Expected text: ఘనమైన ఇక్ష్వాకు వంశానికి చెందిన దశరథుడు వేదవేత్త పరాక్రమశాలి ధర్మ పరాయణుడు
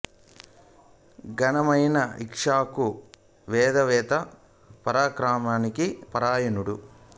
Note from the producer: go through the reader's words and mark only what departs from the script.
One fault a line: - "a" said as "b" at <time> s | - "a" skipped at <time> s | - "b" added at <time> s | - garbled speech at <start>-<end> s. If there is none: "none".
- "వంశానికి చెందిన దశరథుడు" skipped at 2.9 s
- "ధర్మ" skipped at 5.9 s